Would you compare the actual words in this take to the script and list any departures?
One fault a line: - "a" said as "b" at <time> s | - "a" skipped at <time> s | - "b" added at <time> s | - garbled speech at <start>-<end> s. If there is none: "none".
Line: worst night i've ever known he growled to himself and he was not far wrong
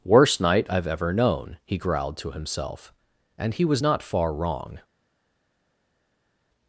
none